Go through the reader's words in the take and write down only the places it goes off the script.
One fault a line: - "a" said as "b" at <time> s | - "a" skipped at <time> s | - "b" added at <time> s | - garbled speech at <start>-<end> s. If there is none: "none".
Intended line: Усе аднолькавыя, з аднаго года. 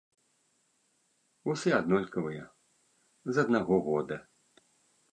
none